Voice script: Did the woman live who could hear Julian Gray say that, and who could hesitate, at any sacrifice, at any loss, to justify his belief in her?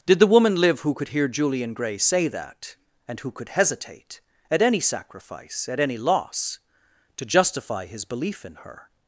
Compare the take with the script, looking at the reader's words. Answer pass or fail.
pass